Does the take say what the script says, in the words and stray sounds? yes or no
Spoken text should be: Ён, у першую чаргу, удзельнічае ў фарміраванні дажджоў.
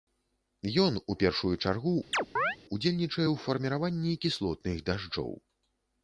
no